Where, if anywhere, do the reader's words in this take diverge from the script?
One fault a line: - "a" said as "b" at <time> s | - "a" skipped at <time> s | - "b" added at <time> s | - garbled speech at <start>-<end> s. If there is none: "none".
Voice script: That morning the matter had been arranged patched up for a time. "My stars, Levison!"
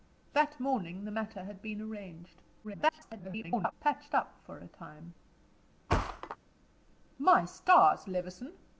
- garbled speech at 2.6-3.7 s